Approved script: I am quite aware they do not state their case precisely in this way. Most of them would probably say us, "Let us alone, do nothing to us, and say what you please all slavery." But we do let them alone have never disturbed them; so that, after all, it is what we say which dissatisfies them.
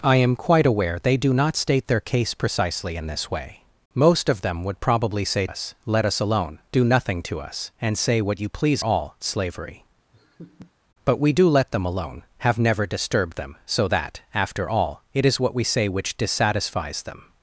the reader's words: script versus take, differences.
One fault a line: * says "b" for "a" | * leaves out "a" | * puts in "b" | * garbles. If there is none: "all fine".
all fine